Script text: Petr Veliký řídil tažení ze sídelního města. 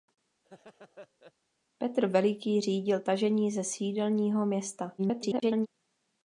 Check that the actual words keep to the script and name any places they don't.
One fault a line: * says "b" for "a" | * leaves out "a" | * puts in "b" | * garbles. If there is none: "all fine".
* garbles